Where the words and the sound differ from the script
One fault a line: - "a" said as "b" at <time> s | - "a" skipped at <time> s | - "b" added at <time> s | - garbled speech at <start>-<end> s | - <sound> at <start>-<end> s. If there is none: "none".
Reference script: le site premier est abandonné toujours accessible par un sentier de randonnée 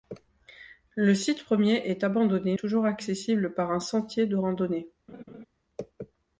- laugh at 5.1-5.5 s